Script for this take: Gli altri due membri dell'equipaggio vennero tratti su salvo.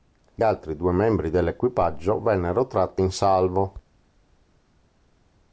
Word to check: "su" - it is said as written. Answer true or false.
false